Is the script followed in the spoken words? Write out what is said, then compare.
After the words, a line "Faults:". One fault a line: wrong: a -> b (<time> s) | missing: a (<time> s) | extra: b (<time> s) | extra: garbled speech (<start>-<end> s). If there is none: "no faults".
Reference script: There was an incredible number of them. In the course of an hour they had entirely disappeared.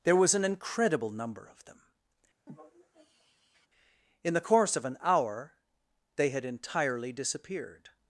There was an incredible number of them. In the course of an hour they had entirely disappeared.
Faults:
no faults